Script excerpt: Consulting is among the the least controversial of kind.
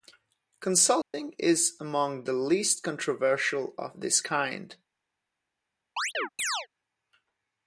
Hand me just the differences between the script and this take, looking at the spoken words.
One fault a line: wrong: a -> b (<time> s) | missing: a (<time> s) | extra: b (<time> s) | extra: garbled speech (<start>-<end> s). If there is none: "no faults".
missing: the (2.3 s)
extra: this (4.0 s)